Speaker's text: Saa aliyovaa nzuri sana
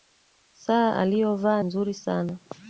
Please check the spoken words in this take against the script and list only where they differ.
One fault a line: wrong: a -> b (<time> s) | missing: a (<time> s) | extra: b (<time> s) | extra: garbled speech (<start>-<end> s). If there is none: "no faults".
no faults